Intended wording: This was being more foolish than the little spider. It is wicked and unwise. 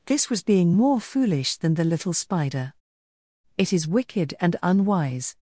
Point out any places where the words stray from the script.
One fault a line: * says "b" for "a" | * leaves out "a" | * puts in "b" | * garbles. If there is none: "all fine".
all fine